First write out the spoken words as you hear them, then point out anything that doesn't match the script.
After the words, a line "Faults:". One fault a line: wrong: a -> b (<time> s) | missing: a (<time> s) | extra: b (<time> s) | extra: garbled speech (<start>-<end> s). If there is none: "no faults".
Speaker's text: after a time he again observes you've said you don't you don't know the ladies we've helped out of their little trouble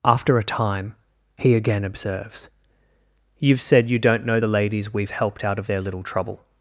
after a time he again observes you've said you don't know the ladies we've helped out of their little trouble
Faults:
missing: you don't (4.2 s)